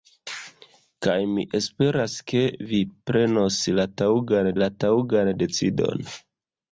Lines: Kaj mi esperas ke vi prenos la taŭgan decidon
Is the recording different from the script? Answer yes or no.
yes